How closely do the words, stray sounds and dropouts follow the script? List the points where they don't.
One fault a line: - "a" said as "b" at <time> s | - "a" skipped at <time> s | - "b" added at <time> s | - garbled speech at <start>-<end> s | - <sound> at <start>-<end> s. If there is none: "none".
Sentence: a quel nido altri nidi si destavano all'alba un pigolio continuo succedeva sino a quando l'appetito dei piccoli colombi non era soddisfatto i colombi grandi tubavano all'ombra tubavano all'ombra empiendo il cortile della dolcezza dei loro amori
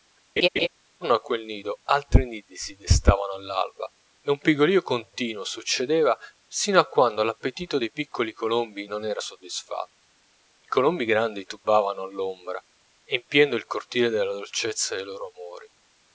- laugh at 0.4-0.7 s
- "e" added at 4.2 s
- "tubavano all'ombra" skipped at 12.6 s